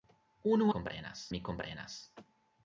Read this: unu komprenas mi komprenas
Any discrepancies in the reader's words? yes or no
no